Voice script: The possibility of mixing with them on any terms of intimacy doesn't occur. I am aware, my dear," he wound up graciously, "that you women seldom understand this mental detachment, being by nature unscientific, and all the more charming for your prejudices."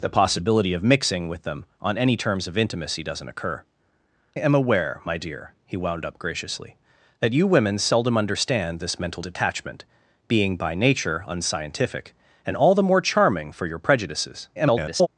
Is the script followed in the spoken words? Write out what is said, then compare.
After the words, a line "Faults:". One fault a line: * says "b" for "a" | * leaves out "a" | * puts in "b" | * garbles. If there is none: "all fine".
The possibility of mixing with them on any terms of intimacy doesn't occur. am aware, my dear," he wound up graciously, "that you women seldom understand this mental detachment, being by nature unscientific, and all the more charming for your prejudices." [garbled]
Faults:
* leaves out "I"
* garbles